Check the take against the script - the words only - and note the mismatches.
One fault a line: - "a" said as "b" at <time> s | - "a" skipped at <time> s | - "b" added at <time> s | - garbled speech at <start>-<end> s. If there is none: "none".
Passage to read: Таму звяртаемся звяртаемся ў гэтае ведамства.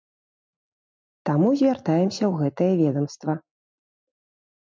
- "звяртаемся" skipped at 2.2 s